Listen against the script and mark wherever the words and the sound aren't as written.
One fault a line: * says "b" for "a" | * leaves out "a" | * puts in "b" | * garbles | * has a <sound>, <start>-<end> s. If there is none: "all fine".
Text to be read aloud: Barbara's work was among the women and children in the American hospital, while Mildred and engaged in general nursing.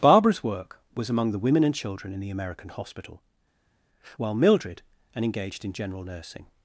all fine